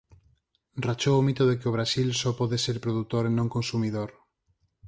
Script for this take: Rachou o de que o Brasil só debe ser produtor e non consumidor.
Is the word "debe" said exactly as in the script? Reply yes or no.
no